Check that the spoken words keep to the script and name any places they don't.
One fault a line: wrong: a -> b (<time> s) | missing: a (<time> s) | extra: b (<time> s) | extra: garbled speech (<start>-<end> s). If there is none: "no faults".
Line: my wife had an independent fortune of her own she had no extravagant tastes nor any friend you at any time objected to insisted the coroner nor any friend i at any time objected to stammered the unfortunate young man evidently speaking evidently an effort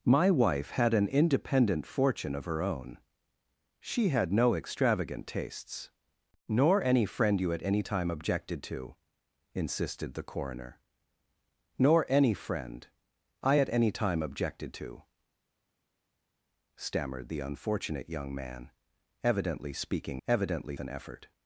no faults